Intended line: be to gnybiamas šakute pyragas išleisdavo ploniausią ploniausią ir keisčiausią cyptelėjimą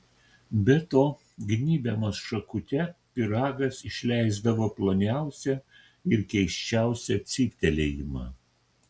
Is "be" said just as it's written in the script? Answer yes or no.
yes